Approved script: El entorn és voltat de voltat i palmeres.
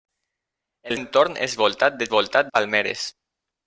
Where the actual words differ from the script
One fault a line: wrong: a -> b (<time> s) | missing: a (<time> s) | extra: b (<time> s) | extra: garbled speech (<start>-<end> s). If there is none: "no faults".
no faults